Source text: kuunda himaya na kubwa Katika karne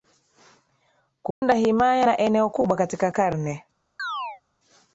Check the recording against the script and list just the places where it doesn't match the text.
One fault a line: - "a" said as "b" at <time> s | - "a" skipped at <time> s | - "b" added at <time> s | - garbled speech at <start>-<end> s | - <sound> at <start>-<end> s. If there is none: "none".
- dropout at 1.3-1.4 s
- "eneo" added at 2.2 s
- chirp at 4.0-4.4 s